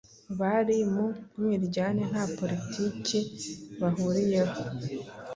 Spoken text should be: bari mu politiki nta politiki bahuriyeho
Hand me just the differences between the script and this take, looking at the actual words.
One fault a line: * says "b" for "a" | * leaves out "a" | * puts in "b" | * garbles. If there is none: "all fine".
* says "mwiryane" for "politiki"